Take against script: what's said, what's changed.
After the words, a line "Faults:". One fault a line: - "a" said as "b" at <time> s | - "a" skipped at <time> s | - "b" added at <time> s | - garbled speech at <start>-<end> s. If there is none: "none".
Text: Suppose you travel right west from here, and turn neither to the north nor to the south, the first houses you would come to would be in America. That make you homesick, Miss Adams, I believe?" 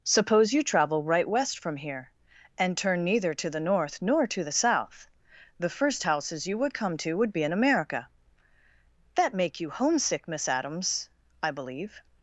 Suppose you travel right west from here, and turn neither to the north nor to the south, the first houses you would come to would be in America. That make you homesick, Miss Adams, I believe?"
Faults:
none